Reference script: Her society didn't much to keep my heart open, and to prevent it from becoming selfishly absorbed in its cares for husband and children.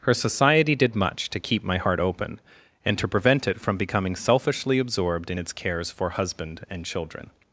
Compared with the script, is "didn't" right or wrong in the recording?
wrong